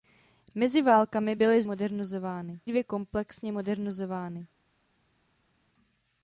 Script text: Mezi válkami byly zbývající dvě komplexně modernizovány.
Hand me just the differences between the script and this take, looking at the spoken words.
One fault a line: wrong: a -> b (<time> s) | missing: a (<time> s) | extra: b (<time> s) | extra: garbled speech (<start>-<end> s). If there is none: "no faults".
wrong: zbývající -> modernizovány (1.7 s)